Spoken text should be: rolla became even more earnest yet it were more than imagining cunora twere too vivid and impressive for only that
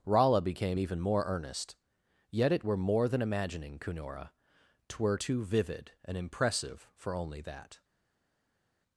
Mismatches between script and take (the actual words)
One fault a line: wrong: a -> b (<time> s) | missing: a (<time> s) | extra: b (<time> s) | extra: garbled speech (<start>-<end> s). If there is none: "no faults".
no faults